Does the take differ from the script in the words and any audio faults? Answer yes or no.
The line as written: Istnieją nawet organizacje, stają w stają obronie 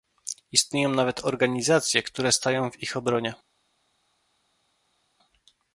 yes